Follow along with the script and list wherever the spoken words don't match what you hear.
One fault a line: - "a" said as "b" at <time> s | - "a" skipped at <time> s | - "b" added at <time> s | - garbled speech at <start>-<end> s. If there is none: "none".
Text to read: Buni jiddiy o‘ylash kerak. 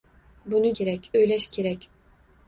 - "jiddiy" said as "kerak" at 0.8 s